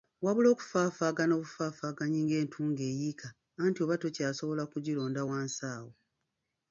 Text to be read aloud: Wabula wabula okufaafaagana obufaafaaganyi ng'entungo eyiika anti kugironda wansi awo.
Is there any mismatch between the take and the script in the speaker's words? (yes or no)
yes